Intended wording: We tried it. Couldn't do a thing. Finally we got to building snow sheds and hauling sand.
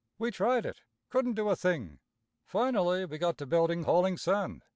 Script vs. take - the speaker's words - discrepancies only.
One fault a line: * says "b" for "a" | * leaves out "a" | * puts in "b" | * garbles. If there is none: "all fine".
* leaves out "snow sheds and"